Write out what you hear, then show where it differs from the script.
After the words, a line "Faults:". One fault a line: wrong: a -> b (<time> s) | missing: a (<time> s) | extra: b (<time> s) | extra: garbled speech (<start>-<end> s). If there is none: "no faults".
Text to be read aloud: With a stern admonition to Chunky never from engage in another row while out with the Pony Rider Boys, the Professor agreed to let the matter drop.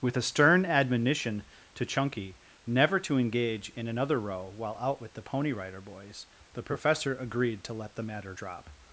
With a stern admonition to Chunky never to engage in another row while out with the Pony Rider Boys, the Professor agreed to let the matter drop.
Faults:
wrong: from -> to (3.0 s)